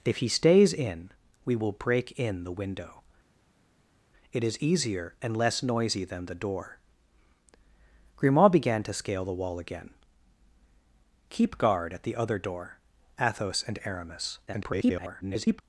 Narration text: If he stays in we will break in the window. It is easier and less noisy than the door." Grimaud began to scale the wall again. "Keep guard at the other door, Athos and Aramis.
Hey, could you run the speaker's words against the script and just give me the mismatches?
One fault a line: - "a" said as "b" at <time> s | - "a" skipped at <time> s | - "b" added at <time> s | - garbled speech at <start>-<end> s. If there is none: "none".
- garbled speech at 14.5-15.6 s